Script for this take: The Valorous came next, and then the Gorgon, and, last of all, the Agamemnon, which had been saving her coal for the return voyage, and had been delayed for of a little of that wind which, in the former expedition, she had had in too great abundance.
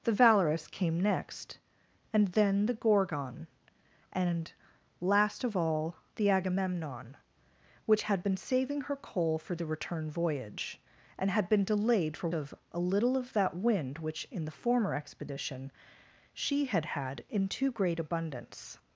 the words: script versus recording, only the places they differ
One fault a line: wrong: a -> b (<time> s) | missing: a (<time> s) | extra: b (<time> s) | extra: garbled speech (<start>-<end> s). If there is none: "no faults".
no faults